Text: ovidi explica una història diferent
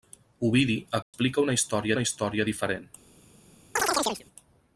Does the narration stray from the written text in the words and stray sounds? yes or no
yes